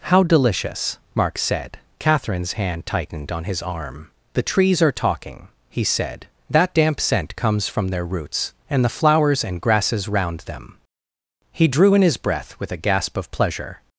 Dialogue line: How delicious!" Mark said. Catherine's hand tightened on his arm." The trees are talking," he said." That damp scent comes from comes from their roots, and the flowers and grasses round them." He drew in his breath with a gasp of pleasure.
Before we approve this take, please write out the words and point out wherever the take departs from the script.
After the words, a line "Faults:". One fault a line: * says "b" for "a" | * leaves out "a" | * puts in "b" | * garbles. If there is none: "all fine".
How delicious!" Mark said. Catherine's hand tightened on his arm." The trees are talking," he said." That damp scent comes from their roots, and the flowers and grasses round them." He drew in his breath with a gasp of pleasure.
Faults:
* leaves out "comes from"